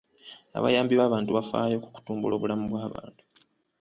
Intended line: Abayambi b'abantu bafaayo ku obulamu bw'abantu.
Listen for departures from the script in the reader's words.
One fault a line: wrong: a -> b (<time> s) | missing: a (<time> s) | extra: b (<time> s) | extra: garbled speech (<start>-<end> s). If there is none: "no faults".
extra: kutumbula (1.9 s)